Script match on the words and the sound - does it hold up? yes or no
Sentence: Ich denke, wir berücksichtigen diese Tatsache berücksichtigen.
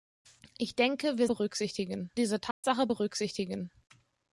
no